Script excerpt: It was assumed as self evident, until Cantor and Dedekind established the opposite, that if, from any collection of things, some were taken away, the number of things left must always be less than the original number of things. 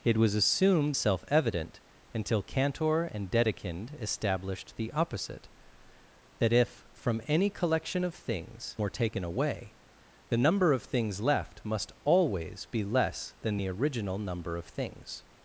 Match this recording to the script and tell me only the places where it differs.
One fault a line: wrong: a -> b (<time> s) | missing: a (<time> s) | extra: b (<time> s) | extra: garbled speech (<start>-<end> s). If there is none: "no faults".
missing: as (1.0 s)
missing: some (8.8 s)